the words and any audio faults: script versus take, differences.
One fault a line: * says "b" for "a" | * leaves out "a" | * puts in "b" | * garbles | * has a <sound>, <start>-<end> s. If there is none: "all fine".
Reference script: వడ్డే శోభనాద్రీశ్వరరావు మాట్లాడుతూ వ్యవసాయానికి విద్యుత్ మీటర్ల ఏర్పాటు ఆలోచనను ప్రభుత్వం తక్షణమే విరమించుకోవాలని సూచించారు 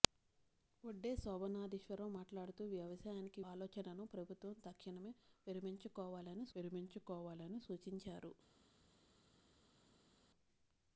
* leaves out "విద్యుత్ మీటర్ల ఏర్పాటు"
* puts in "విరమించుకోవాలని"